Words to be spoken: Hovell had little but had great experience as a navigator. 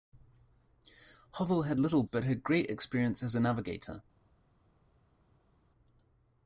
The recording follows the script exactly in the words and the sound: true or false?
true